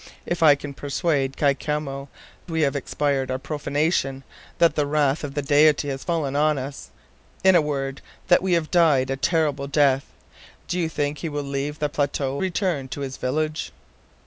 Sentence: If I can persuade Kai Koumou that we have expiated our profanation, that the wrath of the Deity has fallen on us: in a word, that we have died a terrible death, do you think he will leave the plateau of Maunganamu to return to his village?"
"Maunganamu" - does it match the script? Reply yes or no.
no